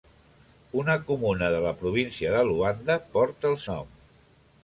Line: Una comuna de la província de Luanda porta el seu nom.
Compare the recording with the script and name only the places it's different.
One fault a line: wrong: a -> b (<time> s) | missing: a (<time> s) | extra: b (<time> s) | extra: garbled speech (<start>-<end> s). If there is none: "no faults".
missing: seu (3.6 s)